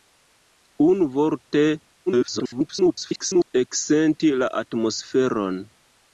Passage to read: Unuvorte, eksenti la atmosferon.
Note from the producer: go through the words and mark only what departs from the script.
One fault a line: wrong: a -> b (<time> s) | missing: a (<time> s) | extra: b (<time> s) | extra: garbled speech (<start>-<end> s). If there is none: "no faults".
extra: garbled speech (2.1-3.5 s)